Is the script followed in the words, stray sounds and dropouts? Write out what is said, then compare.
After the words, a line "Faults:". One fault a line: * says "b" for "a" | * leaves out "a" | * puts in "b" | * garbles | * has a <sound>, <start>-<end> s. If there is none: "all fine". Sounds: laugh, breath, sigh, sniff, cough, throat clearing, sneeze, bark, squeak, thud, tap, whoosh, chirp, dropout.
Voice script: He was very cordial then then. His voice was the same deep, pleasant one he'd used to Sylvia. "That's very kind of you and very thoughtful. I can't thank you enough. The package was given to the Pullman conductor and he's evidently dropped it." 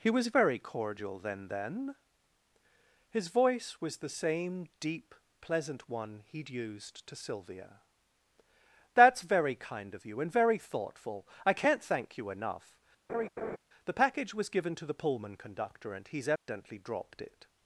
He was very cordial then then. His voice was the same deep, pleasant one he'd used to Sylvia. "That's very kind of you and very thoughtful. I can't thank you enough. The package was given to the Pullman conductor and he's evidently dropped it."
Faults:
* has a laugh, 13.1-13.6 s
* has a dropout, 16.4-16.5 s